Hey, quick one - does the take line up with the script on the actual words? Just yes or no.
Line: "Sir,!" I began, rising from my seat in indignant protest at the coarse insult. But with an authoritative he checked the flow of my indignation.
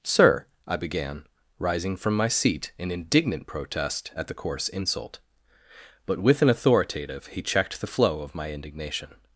yes